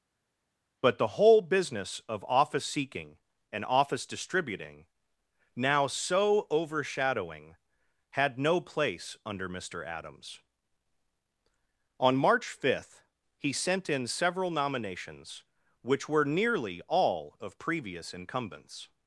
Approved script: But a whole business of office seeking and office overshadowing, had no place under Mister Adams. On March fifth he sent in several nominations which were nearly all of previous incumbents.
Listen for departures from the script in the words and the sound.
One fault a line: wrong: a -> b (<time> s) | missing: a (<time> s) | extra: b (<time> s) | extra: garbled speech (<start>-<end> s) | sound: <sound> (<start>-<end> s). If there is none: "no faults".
wrong: a -> the (1.0 s)
extra: distributing now so (4.0 s)